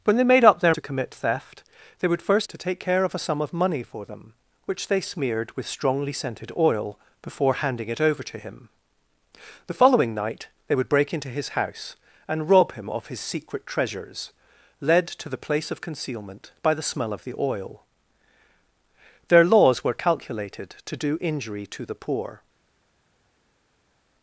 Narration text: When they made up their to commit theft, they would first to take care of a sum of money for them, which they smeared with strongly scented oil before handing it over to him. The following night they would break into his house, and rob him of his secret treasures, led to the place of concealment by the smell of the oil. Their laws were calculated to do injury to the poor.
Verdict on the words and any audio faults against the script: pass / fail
pass